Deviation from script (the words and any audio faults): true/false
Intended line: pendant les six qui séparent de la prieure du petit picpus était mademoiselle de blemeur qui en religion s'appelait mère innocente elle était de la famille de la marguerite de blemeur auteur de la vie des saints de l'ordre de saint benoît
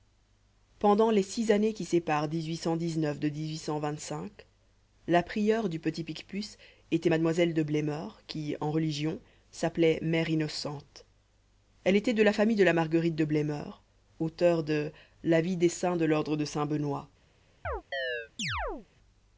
true